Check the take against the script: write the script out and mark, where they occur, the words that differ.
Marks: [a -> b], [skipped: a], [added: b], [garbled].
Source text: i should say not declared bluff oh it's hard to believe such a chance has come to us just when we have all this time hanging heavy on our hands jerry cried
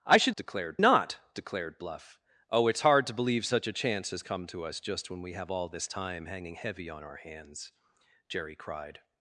i should [say -> declared] not declared bluff oh it's hard to believe such a chance has come to us just when we have all this time hanging heavy on our hands jerry cried